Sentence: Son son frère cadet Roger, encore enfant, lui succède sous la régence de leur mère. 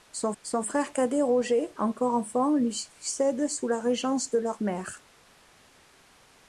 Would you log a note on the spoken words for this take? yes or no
no